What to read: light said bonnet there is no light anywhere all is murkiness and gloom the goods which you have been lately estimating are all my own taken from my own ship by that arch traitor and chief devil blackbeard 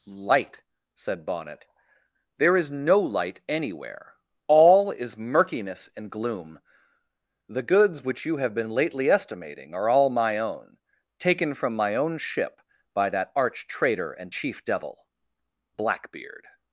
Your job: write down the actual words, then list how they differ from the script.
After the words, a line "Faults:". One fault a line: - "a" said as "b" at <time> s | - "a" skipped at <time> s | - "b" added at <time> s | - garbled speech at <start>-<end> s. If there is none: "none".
light said bonnet there is no light anywhere all is murkiness and gloom the goods which you have been lately estimating are all my own taken from my own ship by that arch traitor and chief devil blackbeard
Faults:
none